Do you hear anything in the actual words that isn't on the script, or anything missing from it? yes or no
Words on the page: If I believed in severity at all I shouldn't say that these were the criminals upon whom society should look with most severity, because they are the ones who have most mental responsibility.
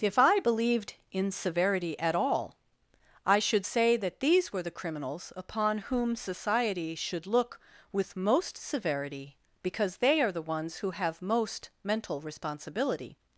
yes